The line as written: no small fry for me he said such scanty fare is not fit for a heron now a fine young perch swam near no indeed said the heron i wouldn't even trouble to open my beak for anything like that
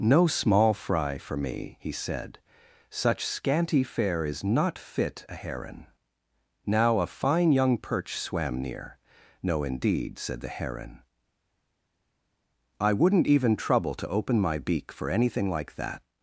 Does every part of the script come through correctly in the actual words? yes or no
no